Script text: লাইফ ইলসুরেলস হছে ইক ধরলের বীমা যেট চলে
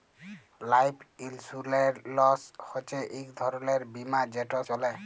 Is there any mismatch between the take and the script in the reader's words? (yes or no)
no